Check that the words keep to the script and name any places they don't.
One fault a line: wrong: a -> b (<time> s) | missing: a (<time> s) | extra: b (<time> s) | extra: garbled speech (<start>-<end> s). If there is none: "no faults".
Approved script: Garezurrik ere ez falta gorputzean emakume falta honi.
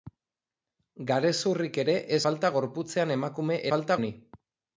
no faults